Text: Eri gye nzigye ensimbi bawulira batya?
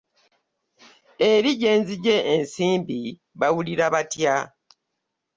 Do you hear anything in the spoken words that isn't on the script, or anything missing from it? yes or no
no